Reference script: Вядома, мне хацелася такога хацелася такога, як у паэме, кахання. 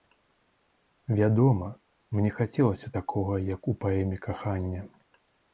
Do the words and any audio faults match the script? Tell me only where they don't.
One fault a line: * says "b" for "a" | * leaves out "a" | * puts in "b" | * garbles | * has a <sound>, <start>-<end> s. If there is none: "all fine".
* leaves out "хацелася такога"